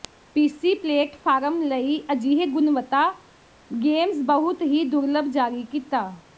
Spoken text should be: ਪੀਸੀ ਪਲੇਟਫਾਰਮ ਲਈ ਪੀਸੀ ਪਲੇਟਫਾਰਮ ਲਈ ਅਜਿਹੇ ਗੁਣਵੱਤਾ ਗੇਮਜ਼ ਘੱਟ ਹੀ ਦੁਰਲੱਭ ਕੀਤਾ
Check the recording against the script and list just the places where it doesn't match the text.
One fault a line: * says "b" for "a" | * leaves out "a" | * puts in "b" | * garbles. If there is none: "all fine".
* leaves out "ਪੀਸੀ ਪਲੇਟਫਾਰਮ ਲਈ"
* says "ਬਹੁਤ" for "ਘੱਟ"
* puts in "ਜਾਰੀ"